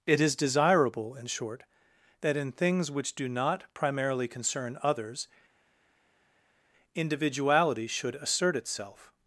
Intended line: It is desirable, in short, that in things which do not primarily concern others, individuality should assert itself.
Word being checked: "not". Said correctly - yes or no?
yes